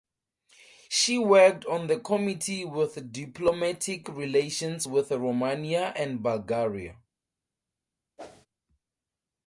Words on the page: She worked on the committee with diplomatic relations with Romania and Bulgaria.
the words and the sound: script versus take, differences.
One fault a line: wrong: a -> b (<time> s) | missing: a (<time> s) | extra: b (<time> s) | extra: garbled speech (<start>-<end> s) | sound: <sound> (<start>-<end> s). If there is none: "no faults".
sound: whoosh (8.2-8.5 s)